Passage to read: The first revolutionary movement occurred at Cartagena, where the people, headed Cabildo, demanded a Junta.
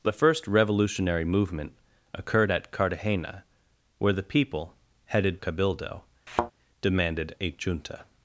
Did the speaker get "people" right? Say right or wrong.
right